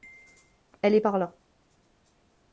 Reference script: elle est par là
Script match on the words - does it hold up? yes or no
yes